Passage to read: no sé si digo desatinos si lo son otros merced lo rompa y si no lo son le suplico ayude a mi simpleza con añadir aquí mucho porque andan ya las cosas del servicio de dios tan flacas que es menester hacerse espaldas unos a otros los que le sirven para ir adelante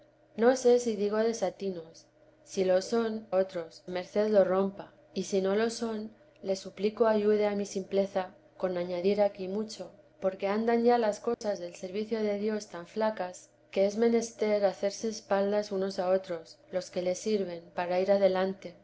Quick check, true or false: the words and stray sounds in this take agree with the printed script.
false